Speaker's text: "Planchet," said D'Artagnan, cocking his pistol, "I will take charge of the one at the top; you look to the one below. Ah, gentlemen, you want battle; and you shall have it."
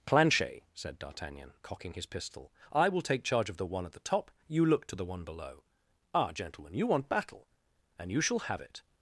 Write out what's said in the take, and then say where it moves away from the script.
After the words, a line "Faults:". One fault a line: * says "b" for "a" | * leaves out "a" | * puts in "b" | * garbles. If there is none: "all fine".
"Planchet," said D'Artagnan, cocking his pistol, "I will take charge of the one at the top; you look to the one below. Ah, gentlemen, you want battle; and you shall have it."
Faults:
all fine